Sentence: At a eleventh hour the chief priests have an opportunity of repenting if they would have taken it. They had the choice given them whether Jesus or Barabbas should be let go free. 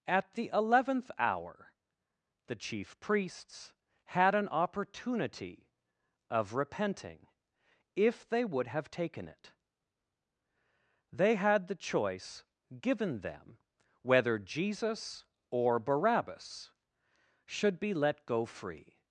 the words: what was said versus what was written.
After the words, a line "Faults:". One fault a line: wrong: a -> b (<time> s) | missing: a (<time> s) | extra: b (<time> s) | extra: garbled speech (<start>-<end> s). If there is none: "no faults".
At the eleventh hour the chief priests had an opportunity of repenting if they would have taken it. They had the choice given them whether Jesus or Barabbas should be let go free.
Faults:
wrong: a -> the (0.3 s)
wrong: have -> had (4.0 s)